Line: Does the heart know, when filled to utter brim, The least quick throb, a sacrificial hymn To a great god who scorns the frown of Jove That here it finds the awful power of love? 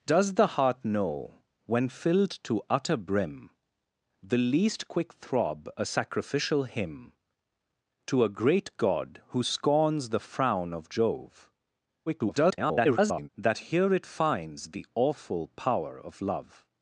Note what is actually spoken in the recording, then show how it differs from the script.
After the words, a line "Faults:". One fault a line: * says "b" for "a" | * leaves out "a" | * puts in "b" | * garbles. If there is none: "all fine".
Does the heart know, when filled to utter brim, The least quick throb, a sacrificial hymn To a great god who scorns the frown of Jove [garbled] That here it finds the awful power of love?
Faults:
* garbles